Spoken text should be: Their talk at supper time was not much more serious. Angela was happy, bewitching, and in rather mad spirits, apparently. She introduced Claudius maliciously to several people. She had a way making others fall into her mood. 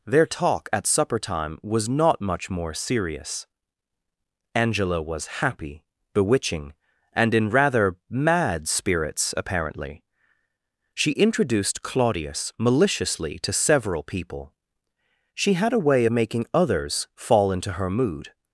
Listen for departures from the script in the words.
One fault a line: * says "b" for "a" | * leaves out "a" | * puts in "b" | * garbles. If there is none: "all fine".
all fine